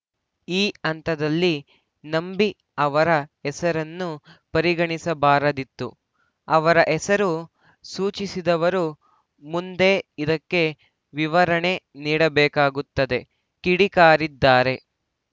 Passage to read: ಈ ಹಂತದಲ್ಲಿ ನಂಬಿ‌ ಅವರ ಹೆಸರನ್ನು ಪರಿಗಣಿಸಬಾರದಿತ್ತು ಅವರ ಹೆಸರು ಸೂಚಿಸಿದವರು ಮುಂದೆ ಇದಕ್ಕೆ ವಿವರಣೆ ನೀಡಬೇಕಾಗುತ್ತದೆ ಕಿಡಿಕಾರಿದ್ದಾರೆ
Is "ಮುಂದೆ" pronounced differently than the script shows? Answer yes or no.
no